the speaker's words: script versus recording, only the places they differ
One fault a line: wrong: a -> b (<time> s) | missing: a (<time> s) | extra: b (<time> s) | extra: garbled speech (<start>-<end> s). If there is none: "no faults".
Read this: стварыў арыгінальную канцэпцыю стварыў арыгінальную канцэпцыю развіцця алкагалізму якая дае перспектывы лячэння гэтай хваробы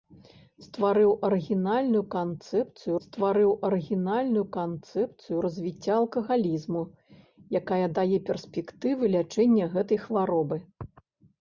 no faults